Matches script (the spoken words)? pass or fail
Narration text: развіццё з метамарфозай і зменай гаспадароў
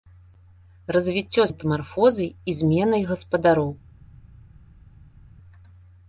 fail